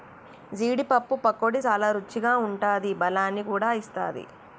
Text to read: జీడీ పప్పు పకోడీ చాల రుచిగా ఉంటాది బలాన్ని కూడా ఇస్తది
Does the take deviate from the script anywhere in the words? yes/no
no